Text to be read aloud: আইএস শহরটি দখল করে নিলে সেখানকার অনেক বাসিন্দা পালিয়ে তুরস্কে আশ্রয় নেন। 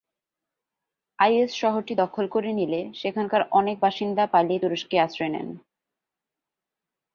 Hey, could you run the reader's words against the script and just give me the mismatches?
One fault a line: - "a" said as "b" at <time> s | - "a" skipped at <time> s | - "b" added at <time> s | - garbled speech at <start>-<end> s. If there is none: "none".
none